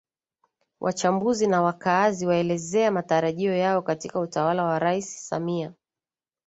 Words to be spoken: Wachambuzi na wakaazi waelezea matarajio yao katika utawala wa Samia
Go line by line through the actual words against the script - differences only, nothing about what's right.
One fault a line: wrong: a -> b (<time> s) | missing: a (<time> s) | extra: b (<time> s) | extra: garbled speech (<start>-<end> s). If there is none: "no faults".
extra: Rais (4.8 s)